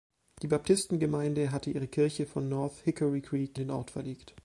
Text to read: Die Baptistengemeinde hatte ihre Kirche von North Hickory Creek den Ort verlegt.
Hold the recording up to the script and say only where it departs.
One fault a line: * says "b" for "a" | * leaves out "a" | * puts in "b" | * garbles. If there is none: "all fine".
all fine